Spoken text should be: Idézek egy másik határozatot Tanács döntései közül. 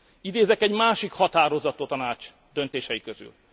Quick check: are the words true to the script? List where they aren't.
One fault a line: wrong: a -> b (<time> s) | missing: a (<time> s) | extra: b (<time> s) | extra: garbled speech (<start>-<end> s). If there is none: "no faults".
no faults